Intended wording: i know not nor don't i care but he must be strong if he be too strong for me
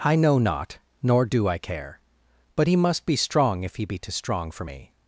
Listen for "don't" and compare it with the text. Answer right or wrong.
wrong